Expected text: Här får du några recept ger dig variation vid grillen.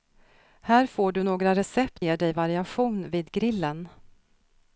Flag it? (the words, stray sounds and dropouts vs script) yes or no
no